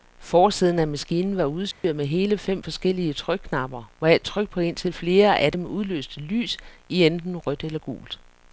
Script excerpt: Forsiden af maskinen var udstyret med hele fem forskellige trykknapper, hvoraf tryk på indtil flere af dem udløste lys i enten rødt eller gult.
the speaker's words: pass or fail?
pass